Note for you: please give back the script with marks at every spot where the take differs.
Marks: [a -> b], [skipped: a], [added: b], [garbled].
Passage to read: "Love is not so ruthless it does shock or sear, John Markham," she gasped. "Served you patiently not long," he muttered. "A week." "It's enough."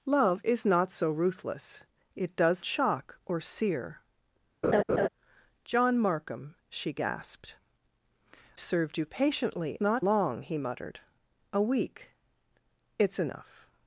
"Love is not so ruthless it does shock or sear, John Markham," she gasped. "Served you patiently not long," he muttered. "A week." "It's enough."